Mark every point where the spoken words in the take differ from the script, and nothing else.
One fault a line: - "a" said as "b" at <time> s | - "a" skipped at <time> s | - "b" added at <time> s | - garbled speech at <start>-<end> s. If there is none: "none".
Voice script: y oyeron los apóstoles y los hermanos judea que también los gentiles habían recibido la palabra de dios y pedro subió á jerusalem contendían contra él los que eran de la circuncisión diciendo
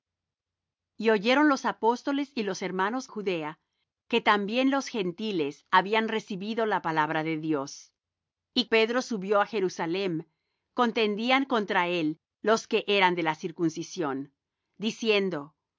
none